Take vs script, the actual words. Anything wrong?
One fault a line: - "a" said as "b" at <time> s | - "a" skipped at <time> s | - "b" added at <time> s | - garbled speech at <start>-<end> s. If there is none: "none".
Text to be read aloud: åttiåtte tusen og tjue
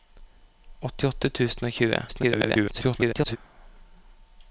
- garbled speech at 2.1-3.4 s